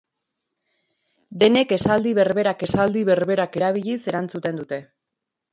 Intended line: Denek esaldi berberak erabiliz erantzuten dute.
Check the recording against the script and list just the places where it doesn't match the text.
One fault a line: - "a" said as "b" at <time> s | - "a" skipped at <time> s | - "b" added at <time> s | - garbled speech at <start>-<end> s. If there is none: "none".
- "esaldi berberak" added at 2.7 s